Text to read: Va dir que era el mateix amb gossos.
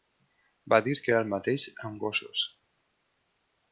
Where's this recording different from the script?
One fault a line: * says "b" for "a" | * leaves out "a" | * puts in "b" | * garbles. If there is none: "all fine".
all fine